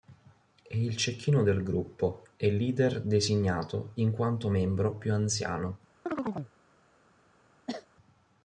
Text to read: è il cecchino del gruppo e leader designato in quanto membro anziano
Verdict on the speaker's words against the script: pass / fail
fail